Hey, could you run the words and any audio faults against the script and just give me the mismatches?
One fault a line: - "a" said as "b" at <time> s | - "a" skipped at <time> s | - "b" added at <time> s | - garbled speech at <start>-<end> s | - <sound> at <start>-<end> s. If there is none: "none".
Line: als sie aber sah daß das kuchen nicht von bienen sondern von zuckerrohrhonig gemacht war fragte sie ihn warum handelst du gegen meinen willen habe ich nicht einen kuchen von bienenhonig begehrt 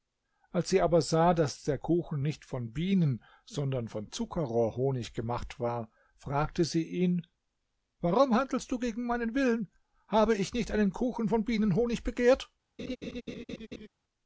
- "das" said as "der" at 1.6 s
- laugh at 12.8-13.9 s